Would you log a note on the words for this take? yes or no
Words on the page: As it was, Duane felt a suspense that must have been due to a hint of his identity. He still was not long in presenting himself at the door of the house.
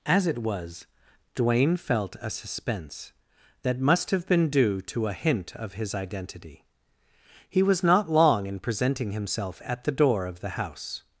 yes